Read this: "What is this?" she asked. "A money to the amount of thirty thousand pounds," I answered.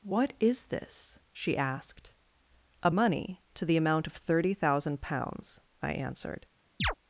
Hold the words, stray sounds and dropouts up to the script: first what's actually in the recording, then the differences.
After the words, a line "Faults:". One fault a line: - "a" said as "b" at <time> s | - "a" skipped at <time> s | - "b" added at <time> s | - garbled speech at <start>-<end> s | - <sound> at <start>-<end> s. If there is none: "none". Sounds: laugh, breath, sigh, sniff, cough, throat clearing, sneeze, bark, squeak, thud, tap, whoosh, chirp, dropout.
"What is this?" she asked. "A money to the amount of thirty thousand pounds," I answered.
Faults:
- chirp at 6.8-6.9 s